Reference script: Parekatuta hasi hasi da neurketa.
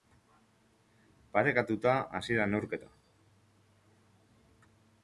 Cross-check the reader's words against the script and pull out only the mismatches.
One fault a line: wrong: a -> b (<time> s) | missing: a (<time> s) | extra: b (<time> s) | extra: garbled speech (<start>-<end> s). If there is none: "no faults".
missing: hasi (2.4 s)